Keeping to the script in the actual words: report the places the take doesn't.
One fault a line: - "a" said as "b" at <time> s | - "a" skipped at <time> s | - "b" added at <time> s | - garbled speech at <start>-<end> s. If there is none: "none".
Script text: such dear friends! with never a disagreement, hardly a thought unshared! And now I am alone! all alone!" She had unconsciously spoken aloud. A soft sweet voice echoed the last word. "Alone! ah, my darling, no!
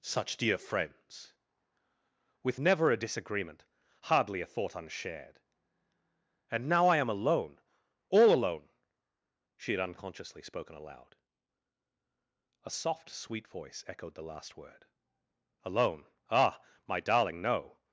none